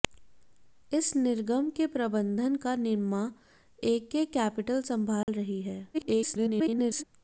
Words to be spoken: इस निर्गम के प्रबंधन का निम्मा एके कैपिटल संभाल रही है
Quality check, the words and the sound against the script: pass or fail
fail